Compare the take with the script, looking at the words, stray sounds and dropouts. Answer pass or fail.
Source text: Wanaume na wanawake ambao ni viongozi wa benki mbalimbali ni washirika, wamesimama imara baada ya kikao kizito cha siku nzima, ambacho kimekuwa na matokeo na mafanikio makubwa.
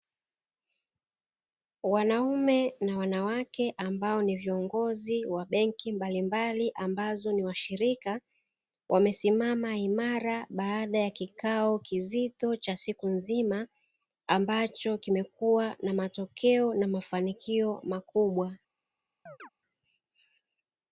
fail